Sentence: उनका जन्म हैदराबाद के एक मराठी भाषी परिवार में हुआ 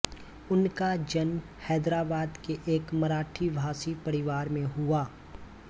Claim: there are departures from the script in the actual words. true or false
false